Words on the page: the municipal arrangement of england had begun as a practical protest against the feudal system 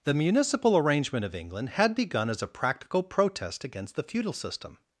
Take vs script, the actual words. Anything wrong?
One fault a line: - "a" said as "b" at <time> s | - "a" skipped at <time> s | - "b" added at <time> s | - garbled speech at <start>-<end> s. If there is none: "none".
none